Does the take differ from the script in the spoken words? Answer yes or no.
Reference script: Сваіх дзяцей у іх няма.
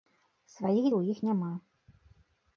yes